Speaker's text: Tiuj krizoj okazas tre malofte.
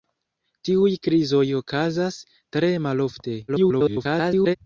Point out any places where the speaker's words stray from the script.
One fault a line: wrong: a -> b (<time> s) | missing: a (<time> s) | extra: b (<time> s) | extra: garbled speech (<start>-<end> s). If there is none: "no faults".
extra: garbled speech (3.5-4.6 s)